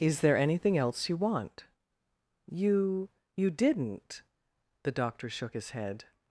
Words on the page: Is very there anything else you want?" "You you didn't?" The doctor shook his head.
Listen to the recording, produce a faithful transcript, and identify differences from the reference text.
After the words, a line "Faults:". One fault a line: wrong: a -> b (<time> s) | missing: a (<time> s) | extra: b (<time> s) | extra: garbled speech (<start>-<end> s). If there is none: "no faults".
Is there anything else you want?" "You you didn't?" The doctor shook his head.
Faults:
missing: very (0.2 s)